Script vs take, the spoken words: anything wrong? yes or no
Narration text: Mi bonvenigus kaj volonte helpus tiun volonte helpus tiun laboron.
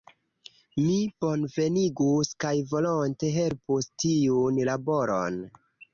yes